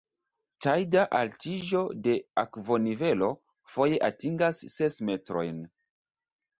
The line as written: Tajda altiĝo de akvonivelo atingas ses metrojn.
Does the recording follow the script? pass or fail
fail